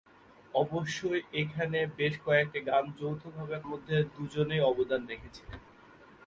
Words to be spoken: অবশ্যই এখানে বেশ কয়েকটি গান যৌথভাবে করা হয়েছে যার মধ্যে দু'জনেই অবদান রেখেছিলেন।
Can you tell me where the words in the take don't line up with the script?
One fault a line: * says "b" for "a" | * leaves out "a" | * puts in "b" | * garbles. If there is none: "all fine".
* leaves out "করা হয়েছে যার"